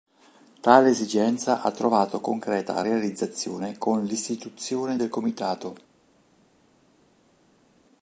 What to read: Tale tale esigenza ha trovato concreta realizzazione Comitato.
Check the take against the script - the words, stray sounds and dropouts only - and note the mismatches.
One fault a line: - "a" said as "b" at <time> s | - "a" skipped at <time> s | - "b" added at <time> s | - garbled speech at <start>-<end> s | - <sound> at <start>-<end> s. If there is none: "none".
- "tale" skipped at 0.9 s
- "con l'istituzione del" added at 3.8 s